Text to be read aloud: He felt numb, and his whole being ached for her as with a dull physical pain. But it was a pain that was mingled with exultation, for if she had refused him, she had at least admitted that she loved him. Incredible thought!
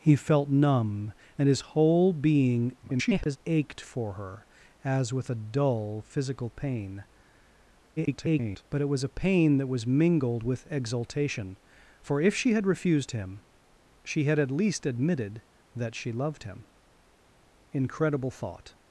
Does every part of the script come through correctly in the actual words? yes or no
no